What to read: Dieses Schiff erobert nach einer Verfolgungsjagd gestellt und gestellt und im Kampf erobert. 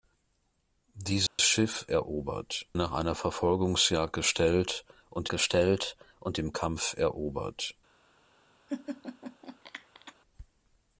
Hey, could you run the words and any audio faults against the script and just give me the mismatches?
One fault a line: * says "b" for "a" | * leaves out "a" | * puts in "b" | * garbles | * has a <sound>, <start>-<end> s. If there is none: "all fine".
* has a dropout, 1.3-1.4 s
* has a laugh, 8.7-10.1 s